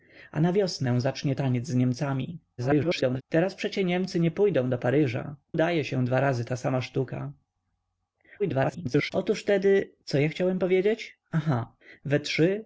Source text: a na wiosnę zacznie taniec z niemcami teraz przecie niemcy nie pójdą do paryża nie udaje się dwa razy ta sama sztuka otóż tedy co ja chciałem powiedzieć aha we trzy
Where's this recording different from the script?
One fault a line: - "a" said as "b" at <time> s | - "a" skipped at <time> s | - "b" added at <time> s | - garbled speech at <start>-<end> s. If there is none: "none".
- garbled speech at 2.6-3.2 s
- "nie" skipped at 5.3 s
- garbled speech at 8.4-9.1 s